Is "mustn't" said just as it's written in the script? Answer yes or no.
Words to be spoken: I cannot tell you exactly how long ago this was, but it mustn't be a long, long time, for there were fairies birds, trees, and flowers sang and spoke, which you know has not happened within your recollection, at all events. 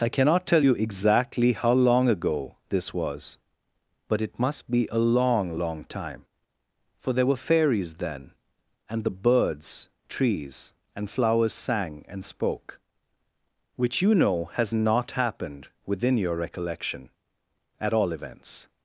no